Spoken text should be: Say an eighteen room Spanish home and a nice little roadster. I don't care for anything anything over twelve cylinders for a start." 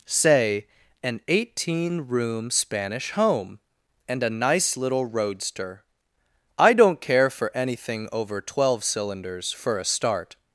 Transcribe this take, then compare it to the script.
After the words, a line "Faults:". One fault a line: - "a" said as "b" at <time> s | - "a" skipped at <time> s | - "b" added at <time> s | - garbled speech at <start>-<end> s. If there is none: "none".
Say an eighteen room Spanish home and a nice little roadster. I don't care for anything over twelve cylinders for a start."
Faults:
- "anything" skipped at 8.1 s